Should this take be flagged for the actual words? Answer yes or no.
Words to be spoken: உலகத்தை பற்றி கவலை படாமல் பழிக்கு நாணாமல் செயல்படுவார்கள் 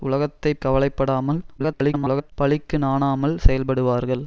yes